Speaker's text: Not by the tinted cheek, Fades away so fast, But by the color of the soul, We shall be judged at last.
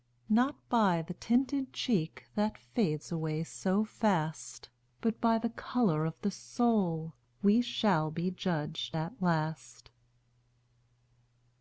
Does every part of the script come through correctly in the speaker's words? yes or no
no